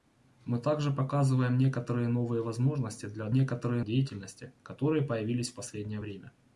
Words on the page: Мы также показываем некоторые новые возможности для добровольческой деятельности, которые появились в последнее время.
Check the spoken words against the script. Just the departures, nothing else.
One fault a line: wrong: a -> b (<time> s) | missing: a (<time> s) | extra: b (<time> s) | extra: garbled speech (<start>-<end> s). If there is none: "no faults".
wrong: добровольческой -> некоторые (3.3 s)